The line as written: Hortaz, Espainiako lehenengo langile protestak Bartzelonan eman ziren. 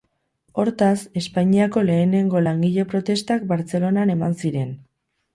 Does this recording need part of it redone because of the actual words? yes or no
no